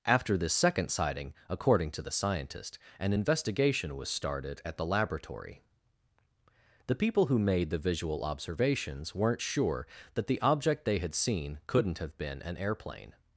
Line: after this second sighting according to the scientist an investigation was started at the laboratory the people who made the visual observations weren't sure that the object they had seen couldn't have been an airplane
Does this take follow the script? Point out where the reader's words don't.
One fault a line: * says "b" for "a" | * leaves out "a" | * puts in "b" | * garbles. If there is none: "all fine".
all fine